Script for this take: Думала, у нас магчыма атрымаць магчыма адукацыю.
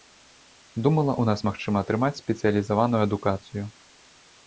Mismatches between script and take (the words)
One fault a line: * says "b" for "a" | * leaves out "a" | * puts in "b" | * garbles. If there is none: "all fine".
* says "спецыялізаваную" for "магчыма"